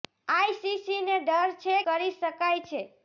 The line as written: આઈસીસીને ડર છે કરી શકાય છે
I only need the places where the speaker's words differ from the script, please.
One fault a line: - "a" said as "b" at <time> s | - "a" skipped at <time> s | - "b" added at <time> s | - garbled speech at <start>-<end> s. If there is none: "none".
none